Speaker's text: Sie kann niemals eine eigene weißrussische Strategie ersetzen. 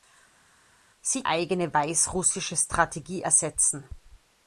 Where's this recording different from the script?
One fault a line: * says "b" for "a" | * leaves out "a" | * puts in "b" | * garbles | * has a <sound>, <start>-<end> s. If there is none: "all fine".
* leaves out "kann niemals eine"